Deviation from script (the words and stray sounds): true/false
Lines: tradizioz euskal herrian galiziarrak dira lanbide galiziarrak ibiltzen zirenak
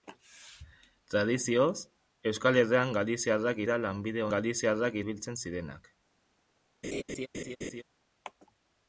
true